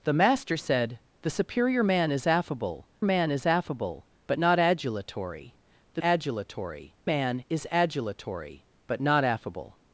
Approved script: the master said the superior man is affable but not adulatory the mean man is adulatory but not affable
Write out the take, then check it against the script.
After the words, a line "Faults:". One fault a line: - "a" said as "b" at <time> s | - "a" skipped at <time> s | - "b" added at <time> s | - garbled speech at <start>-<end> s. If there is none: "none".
the master said the superior man is affable man is affable but not adulatory the adulatory man is adulatory but not affable
Faults:
- "man is affable" added at 3.0 s
- "mean" said as "adulatory" at 6.0 s